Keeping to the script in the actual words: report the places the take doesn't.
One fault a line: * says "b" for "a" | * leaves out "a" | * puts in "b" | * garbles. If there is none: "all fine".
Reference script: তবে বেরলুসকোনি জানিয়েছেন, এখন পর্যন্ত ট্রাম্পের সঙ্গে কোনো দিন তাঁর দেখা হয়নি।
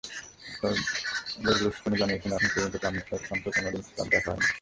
all fine